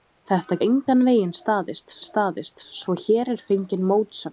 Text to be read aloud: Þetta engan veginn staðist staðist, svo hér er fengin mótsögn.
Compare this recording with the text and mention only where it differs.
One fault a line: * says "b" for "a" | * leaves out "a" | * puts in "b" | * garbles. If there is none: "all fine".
all fine